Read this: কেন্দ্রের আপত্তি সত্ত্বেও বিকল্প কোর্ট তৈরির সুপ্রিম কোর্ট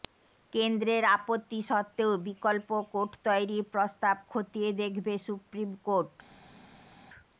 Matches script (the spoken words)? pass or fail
fail